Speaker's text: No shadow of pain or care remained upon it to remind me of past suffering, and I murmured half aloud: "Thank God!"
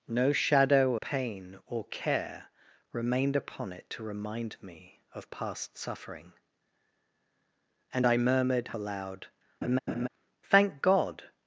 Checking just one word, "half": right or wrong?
wrong